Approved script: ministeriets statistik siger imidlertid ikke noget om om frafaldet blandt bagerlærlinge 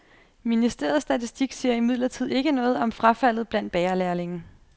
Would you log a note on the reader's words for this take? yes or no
yes